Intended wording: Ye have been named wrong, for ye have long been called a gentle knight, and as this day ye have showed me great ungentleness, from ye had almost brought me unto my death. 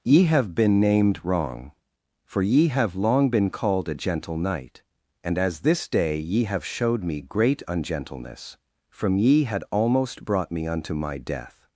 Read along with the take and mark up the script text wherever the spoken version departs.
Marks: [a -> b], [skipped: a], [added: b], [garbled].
Ye have been named wrong, for ye have long been called a gentle knight, and as this day ye have showed me great ungentleness, from ye had almost brought me unto my death.